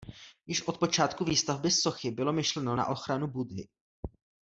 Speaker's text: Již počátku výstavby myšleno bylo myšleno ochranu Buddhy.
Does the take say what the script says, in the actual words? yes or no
no